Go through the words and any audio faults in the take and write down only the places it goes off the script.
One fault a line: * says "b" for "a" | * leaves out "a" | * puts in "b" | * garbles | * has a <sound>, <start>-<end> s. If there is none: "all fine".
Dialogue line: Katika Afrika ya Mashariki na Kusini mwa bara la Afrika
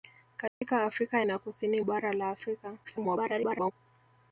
* has a dropout, 0.5-0.6 s
* leaves out "ya Mashariki"
* leaves out "mwa"
* garbles